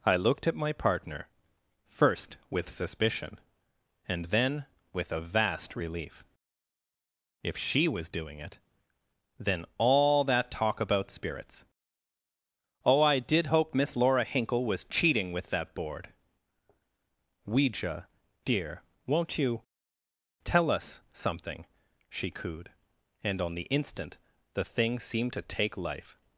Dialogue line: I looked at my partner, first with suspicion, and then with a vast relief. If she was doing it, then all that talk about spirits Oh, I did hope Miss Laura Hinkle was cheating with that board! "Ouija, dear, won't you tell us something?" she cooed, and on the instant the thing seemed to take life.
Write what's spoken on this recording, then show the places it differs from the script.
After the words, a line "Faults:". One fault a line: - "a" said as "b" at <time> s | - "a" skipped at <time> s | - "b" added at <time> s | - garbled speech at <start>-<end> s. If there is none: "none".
I looked at my partner, first with suspicion, and then with a vast relief. If she was doing it, then all that talk about spirits Oh, I did hope Miss Laura Hinkle was cheating with that board! "Ouija, dear, won't you tell us something?" she cooed, and on the instant the thing seemed to take life.
Faults:
none